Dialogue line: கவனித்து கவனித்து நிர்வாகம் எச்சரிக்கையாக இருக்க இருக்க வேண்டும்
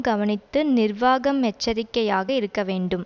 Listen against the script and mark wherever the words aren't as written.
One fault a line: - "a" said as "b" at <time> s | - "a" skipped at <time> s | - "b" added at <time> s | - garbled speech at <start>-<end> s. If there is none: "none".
- "கவனித்து" skipped at 0.6 s
- "இருக்க" skipped at 2.6 s